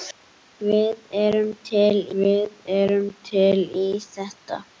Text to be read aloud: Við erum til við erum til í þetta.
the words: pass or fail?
pass